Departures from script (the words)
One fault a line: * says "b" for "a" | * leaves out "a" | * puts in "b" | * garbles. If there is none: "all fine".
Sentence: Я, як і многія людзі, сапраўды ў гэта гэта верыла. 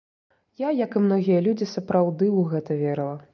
* leaves out "гэта"